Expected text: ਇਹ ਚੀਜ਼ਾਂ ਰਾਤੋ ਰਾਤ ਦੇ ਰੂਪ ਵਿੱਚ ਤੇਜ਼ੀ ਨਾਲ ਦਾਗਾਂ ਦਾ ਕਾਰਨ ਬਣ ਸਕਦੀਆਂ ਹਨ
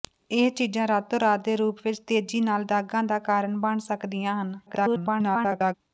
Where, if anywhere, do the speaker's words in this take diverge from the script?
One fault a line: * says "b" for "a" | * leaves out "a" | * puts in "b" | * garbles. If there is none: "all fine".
* garbles